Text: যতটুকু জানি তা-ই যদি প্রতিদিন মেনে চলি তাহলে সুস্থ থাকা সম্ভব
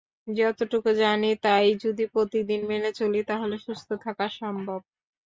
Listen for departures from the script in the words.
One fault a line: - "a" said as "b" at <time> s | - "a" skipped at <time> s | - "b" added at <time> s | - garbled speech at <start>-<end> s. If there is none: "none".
none